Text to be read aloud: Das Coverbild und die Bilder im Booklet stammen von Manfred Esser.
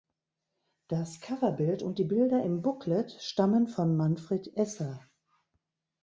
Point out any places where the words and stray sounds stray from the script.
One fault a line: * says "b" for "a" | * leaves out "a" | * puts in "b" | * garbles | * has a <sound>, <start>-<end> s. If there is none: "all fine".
all fine